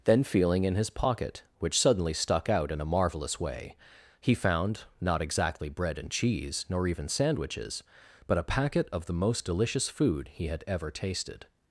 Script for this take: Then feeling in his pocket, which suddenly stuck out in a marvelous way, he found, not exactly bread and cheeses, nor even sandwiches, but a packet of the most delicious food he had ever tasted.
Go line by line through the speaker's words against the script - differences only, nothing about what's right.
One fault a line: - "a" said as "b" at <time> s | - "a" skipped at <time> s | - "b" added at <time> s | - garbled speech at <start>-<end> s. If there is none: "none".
- "cheeses" said as "cheese" at 6.1 s